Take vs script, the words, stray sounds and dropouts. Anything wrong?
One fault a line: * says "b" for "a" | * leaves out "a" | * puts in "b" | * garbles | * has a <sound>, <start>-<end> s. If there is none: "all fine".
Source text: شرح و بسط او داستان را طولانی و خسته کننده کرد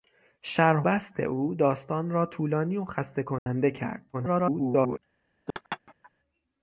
* leaves out "و"
* has a dropout, 3.4-3.5 s
* garbles
* has a laugh, 5.5-6.1 s